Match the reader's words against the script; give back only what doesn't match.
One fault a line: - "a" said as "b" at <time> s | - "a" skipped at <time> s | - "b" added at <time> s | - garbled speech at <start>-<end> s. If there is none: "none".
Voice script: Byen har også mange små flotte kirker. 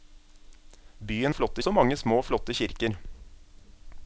- "har" said as "flotte" at 1.3 s